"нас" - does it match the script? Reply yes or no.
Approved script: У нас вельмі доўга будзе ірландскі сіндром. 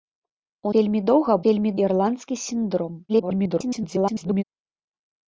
no